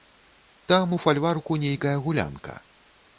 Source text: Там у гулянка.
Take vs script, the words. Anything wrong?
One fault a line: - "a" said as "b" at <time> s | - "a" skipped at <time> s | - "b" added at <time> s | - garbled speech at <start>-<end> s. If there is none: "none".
- "фальварку нейкая" added at 1.0 s